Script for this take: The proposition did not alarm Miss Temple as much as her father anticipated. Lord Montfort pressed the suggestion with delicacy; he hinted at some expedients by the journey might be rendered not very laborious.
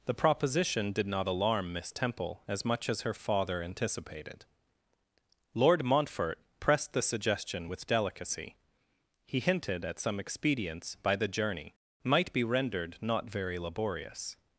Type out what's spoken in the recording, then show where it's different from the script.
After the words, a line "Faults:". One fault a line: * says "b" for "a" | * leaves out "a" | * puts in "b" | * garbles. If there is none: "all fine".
The proposition did not alarm Miss Temple as much as her father anticipated. Lord Montfort pressed the suggestion with delicacy; he hinted at some expedients by the journey might be rendered not very laborious.
Faults:
all fine